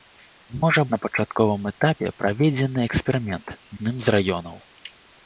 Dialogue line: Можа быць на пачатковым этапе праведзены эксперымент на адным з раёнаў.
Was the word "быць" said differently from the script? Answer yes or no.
yes